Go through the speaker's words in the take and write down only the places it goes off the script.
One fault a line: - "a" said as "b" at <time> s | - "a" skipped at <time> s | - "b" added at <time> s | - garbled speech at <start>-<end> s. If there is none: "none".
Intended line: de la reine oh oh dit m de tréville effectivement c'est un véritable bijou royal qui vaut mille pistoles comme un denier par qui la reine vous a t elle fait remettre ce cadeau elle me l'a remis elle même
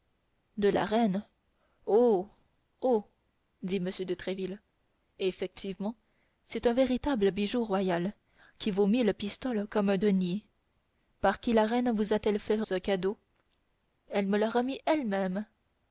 - "remettre" skipped at 12.6 s